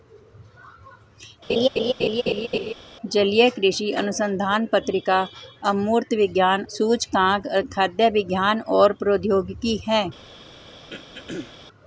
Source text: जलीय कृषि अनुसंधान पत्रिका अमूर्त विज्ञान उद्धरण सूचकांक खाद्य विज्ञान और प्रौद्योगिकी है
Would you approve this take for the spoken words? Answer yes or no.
no